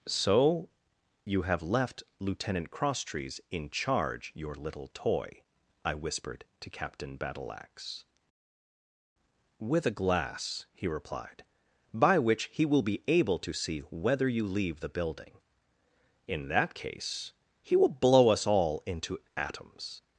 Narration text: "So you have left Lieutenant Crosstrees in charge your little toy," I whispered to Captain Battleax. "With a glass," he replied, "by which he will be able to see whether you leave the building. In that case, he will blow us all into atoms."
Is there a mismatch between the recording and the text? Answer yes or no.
no